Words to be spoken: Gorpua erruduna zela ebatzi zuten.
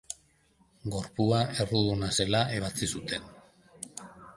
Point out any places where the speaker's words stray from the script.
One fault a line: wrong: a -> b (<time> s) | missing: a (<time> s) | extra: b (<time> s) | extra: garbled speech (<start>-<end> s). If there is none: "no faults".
no faults